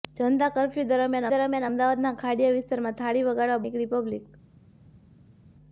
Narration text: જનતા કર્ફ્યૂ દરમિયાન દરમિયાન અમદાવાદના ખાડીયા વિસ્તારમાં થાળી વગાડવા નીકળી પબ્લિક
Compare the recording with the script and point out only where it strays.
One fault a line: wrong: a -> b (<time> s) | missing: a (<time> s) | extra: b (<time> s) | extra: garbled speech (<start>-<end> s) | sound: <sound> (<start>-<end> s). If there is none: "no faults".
no faults